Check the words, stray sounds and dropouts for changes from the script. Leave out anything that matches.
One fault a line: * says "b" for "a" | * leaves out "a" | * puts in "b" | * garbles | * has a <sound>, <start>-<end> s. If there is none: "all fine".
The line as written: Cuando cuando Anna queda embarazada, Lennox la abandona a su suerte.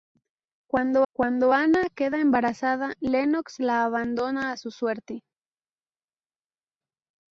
all fine